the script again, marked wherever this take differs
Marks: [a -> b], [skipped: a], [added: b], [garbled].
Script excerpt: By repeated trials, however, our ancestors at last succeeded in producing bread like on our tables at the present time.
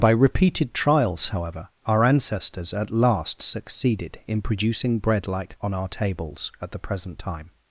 By repeated trials, however, our ancestors at last succeeded in producing bread like on our tables at the present time.